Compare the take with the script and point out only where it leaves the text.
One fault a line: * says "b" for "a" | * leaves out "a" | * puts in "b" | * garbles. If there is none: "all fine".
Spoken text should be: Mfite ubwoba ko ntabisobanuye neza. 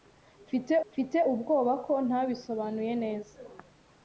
* puts in "mfite"